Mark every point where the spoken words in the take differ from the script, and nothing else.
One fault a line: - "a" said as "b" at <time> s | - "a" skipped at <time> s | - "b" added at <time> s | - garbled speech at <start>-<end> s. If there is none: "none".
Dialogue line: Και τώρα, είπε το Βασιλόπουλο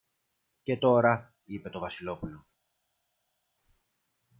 none